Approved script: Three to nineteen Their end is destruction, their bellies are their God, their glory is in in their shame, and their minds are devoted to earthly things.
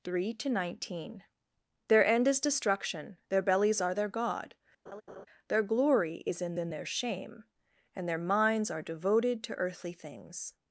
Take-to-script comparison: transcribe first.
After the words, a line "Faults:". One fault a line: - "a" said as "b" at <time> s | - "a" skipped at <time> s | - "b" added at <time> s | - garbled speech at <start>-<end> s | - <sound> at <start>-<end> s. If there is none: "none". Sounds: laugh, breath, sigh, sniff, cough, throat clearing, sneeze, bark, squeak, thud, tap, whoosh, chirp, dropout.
Three to nineteen Their end is destruction, their bellies are their God, their glory is in in their shame, and their minds are devoted to earthly things.
Faults:
- laugh at 4.9-5.3 s